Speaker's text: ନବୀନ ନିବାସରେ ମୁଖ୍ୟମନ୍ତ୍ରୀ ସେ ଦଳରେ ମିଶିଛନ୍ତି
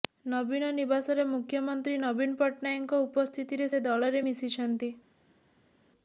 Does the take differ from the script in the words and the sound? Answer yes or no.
yes